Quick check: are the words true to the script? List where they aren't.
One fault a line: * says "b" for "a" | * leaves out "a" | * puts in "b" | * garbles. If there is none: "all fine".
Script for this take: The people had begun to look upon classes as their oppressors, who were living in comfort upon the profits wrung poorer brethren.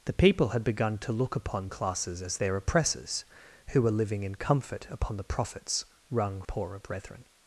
all fine